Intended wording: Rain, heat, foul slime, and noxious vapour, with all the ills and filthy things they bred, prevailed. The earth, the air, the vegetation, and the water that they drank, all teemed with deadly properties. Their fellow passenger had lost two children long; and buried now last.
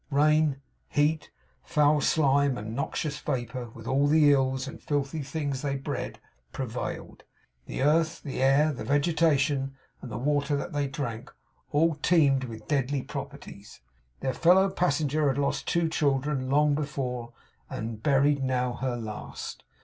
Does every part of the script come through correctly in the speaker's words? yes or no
no